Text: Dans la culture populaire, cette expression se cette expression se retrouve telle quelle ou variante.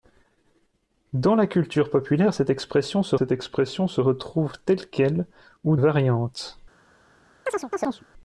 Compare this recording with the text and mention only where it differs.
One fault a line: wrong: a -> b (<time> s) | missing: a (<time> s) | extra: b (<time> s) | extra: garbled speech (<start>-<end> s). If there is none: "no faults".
no faults